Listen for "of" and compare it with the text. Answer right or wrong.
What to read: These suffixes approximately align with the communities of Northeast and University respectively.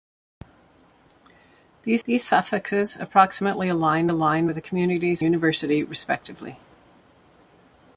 wrong